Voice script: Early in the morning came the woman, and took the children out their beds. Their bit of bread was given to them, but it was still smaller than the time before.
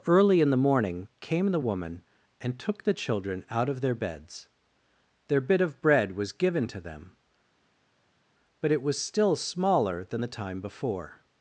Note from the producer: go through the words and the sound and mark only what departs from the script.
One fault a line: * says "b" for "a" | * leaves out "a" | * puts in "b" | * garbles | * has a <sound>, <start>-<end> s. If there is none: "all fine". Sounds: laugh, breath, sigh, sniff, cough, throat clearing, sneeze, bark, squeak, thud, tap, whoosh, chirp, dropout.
* puts in "of"